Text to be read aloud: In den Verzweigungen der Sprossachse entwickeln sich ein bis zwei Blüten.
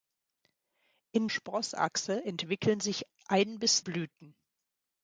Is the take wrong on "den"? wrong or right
wrong